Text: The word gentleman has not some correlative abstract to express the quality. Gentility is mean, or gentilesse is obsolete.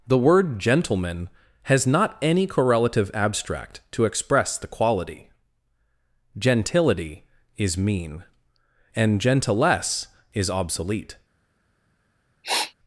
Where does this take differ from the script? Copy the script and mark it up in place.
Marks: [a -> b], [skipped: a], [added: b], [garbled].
The word gentleman has not [some -> any] correlative abstract to express the quality. Gentility is mean, [or -> and] gentilesse is obsolete.